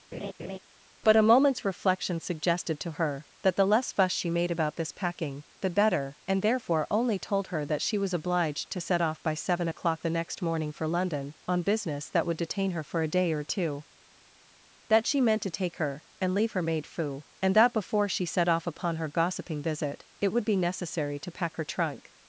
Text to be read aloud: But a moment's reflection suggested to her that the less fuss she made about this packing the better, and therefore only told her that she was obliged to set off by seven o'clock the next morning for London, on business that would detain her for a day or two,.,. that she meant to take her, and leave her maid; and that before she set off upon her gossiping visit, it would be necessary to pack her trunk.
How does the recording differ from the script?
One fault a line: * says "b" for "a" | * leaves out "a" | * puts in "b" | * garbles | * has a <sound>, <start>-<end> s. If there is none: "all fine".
* has a laugh, 0.1-0.6 s
* puts in "fu"